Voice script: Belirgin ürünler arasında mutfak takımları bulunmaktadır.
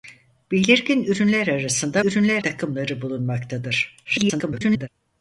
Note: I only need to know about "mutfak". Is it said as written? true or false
false